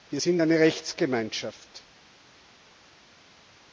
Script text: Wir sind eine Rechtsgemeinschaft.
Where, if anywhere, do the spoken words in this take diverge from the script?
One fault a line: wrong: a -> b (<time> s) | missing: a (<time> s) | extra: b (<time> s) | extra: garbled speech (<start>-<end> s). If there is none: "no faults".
no faults